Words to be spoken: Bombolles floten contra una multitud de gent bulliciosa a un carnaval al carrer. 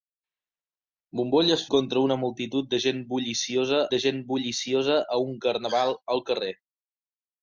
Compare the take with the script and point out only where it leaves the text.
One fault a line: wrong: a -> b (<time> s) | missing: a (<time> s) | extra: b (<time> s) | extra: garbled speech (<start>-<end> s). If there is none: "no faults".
missing: floten (1.6 s)
extra: de gent bulliciosa (3.9 s)